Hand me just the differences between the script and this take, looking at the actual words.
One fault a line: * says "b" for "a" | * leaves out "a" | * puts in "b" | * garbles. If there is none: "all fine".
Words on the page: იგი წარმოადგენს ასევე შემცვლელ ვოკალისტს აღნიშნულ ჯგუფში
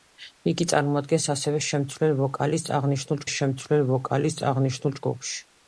* puts in "შემცვლელ ვოკალისტს აღნიშნულ"